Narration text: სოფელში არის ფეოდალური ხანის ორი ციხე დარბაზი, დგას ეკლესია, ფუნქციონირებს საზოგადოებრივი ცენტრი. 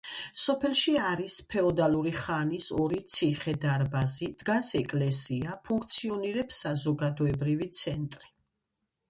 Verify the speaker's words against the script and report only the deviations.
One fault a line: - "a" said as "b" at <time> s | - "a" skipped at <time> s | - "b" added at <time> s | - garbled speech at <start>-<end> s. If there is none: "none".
none